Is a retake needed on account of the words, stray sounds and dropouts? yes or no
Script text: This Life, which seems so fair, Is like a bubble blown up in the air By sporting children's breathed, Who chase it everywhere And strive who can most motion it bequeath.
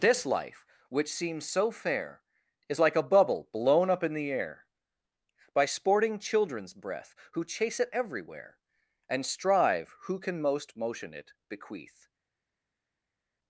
yes